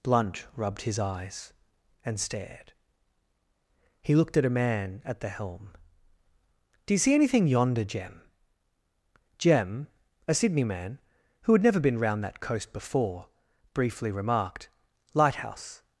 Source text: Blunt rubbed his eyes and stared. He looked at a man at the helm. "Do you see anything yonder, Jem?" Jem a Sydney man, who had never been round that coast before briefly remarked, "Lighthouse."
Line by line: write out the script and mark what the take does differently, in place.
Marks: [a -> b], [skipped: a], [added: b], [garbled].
Blunt rubbed his eyes and stared. He looked at a man at the helm. "Do you see anything yonder, Jem?" Jem a Sydney man, who had never been round that coast before briefly remarked, "Lighthouse."